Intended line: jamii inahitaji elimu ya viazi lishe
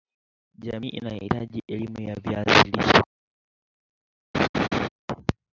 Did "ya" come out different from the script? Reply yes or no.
no